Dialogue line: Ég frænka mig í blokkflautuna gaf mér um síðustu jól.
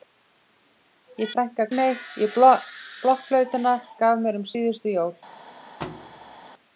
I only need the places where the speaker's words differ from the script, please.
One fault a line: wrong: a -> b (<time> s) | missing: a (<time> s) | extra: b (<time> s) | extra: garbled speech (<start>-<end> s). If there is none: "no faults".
no faults